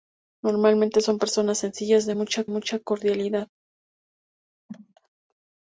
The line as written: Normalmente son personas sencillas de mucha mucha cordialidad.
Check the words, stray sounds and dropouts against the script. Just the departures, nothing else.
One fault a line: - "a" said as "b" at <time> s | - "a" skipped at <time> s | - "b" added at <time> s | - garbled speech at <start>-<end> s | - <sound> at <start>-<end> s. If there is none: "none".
- cough at 4.7-4.9 s